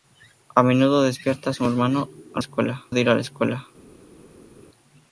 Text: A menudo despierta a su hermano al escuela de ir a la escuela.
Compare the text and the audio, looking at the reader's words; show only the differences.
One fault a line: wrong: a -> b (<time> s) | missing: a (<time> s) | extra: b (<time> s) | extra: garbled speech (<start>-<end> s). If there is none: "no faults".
no faults